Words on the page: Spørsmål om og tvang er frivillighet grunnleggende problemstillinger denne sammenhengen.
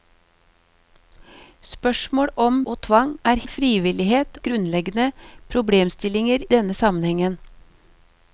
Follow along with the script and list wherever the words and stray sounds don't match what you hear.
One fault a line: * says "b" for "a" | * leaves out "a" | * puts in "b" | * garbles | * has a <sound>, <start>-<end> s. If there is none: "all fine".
all fine